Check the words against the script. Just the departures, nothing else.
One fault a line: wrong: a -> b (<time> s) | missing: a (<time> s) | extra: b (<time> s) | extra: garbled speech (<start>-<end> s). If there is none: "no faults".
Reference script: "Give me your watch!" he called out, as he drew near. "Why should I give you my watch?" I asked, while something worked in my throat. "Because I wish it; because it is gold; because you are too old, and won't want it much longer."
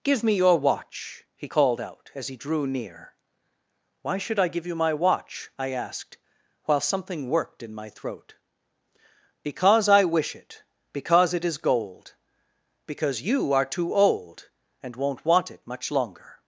no faults